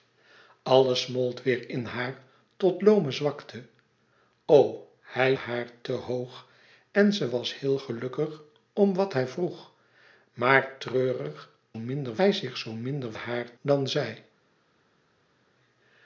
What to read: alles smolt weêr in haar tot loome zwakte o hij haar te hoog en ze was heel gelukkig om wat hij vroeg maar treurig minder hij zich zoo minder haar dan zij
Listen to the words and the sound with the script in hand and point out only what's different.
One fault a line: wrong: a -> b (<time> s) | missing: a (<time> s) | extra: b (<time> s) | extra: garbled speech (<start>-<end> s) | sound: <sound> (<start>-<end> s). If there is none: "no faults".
no faults